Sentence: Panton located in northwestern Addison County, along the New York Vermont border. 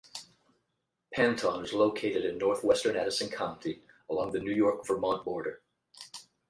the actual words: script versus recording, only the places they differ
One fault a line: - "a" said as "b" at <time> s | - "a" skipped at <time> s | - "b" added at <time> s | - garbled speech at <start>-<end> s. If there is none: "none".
- "is" added at 1.6 s